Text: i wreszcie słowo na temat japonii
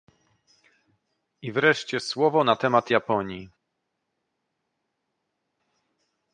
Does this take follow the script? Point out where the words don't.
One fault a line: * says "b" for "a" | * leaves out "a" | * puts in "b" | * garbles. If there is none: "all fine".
all fine